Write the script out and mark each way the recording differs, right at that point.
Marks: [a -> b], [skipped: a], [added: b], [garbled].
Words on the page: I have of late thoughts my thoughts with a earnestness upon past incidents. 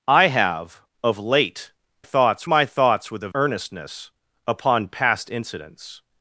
I have of late thoughts my thoughts with a earnestness upon past incidents.